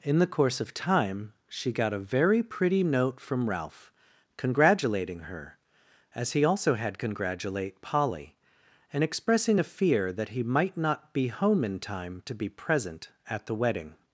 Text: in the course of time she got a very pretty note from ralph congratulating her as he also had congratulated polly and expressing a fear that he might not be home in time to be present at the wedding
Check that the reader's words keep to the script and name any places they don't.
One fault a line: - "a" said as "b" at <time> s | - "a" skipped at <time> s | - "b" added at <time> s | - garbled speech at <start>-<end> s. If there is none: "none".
- "congratulated" said as "congratulate" at 7.0 s